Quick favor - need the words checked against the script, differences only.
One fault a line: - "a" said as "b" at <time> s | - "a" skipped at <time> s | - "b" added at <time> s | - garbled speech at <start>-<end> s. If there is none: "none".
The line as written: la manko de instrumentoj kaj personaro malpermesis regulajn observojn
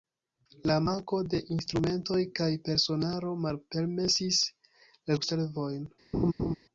- "regulajn" skipped at 4.4 s